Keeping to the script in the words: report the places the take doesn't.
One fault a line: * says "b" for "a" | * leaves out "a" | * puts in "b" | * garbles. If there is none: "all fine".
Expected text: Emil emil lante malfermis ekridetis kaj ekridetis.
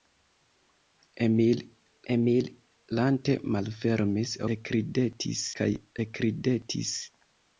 all fine